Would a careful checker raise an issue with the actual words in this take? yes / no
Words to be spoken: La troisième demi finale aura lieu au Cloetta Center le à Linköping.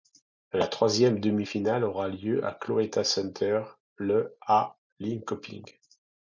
no